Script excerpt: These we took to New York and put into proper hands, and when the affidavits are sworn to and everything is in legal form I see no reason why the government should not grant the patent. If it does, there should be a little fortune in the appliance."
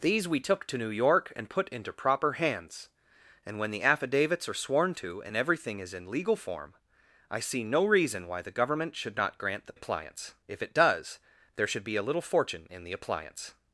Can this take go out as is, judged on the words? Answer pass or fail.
fail